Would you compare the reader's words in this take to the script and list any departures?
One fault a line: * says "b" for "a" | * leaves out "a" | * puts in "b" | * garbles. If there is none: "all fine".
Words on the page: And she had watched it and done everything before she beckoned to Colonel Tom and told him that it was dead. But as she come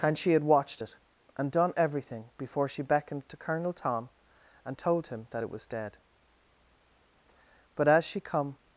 all fine